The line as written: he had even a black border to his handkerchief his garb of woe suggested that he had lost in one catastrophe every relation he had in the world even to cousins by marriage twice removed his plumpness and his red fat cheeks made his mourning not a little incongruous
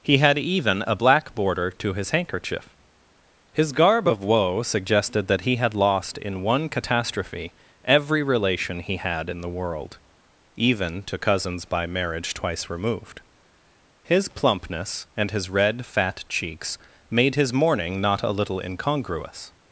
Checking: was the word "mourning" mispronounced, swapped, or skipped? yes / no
no